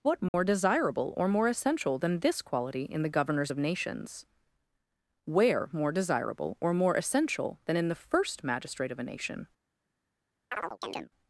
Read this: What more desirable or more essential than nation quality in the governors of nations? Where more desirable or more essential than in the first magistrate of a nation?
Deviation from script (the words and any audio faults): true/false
true